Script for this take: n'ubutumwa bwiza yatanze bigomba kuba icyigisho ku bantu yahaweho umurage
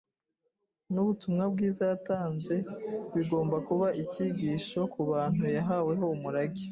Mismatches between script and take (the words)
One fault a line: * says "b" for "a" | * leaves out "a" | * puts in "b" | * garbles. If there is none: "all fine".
all fine